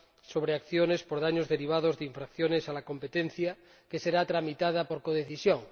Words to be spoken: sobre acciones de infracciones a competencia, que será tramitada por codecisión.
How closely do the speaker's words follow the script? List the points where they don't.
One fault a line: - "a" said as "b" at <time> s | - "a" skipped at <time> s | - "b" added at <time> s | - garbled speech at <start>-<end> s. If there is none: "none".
- "por daños derivados" added at 1.0 s
- "la" added at 2.7 s